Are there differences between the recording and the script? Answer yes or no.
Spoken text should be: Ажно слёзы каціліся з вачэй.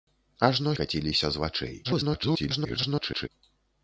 yes